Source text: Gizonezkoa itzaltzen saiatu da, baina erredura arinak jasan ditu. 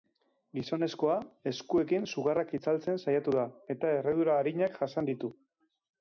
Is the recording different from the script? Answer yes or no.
yes